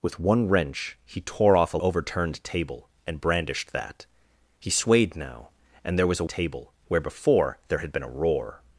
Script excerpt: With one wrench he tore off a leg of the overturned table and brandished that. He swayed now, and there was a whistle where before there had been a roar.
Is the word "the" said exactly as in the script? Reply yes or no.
no